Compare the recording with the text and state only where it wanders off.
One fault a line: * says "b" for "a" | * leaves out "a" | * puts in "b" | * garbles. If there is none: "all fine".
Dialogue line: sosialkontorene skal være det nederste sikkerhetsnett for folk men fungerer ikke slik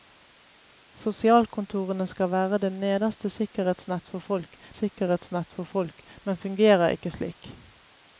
* puts in "sikkerhetsnett for folk"